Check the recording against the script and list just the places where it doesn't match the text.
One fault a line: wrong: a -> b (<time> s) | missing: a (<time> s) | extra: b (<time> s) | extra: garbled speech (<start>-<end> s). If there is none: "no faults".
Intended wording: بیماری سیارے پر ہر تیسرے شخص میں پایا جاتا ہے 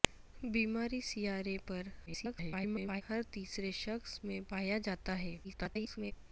extra: garbled speech (2.1-3.0 s)
extra: garbled speech (5.4-6.1 s)